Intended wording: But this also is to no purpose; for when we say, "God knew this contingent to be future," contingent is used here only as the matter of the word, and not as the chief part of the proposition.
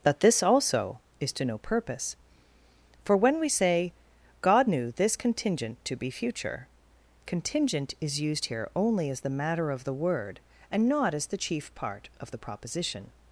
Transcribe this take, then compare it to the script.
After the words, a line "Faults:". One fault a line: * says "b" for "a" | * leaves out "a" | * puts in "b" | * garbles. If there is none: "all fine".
That this also is to no purpose; for when we say, "God knew this contingent to be future," contingent is used here only as the matter of the word, and not as the chief part of the proposition.
Faults:
* says "That" for "But"